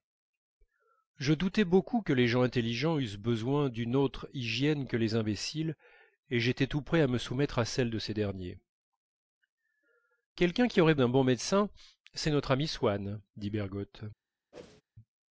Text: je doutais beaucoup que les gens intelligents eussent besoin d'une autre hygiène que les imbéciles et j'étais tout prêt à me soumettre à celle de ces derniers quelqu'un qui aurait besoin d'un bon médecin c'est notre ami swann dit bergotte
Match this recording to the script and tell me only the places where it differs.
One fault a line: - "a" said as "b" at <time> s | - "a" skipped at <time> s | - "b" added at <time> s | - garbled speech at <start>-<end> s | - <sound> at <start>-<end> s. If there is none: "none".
- "besoin" skipped at 10.9 s
- whoosh at 14.5-14.8 s